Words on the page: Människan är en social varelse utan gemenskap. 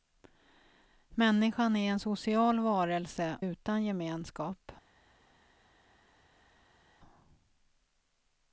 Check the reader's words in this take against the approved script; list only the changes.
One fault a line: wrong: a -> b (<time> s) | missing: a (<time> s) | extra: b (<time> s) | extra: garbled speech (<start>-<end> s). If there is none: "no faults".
no faults